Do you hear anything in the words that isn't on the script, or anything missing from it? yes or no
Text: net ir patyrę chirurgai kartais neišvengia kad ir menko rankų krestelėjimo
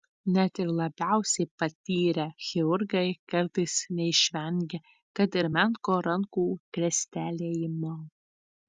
yes